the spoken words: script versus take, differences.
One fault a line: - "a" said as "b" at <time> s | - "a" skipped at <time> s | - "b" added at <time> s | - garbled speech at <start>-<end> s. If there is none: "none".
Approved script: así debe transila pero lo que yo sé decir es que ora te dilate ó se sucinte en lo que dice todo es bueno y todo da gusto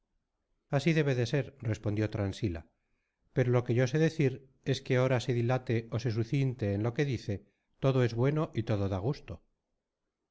- "de ser respondió" added at 1.1 s
- "te" said as "se" at 5.2 s